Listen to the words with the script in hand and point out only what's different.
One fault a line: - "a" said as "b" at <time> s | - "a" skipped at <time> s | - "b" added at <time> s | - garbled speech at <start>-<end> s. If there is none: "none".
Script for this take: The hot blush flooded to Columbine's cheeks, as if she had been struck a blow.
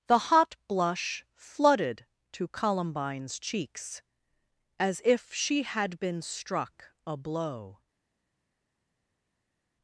none